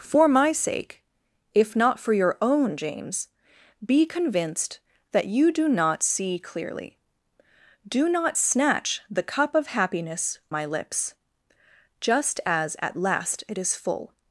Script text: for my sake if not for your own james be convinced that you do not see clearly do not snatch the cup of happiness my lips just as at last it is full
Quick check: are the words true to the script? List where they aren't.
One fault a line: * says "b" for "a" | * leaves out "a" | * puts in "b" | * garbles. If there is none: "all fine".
all fine